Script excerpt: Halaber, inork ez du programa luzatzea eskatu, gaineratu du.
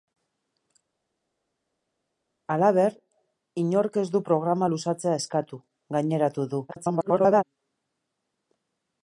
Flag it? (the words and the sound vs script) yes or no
yes